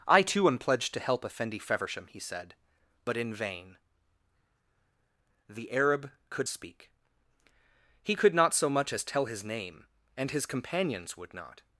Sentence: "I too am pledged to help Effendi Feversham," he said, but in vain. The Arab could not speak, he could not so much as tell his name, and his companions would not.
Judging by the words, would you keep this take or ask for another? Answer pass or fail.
fail